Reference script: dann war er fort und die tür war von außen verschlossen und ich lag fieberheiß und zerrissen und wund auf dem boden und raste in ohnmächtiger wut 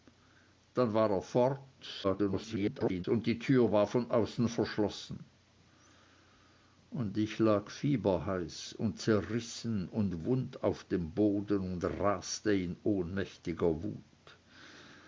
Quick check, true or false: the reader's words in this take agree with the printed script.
false